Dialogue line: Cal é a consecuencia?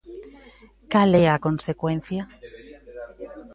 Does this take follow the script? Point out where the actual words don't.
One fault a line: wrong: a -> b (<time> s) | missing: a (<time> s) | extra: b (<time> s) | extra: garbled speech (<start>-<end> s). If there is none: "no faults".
no faults